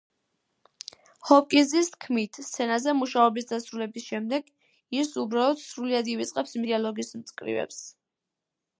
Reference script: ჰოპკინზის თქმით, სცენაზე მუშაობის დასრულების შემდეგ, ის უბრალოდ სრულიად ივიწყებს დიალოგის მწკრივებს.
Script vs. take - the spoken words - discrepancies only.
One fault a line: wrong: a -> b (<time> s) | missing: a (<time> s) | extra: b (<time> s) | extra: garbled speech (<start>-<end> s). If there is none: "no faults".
no faults